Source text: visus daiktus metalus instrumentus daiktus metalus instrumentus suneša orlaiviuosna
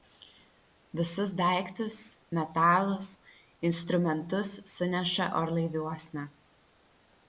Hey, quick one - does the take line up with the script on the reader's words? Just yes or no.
no